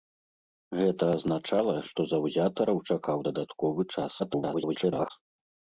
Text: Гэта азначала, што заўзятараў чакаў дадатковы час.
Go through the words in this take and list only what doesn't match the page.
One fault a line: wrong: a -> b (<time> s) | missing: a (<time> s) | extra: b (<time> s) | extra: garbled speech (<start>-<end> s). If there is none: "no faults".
extra: garbled speech (4.2-5.1 s)